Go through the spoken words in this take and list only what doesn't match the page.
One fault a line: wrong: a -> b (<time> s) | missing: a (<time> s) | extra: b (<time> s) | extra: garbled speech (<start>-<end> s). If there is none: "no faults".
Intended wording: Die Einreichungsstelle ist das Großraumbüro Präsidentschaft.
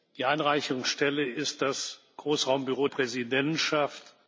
no faults